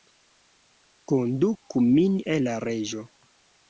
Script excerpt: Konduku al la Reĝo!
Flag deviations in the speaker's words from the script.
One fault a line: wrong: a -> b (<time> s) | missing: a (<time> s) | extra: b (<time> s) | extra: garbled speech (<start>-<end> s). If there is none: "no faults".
extra: min (1.9 s)